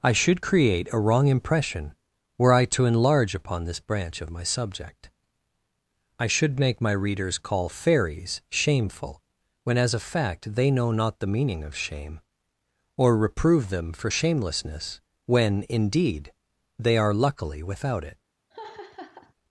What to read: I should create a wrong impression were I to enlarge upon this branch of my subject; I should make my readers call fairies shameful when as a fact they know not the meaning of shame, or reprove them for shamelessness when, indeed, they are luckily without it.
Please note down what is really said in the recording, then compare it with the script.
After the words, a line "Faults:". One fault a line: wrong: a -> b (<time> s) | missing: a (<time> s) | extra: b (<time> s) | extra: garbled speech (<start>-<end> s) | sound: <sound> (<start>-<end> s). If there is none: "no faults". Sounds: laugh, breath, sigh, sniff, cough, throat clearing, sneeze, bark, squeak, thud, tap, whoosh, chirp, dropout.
I should create a wrong impression were I to enlarge upon this branch of my subject; I should make my readers call fairies shameful when as a fact they know not the meaning of shame, or reprove them for shamelessness when, indeed, they are luckily without it.
Faults:
sound: laugh (18.5-19.3 s)